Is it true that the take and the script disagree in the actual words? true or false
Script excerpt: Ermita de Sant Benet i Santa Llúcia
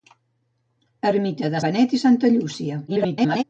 true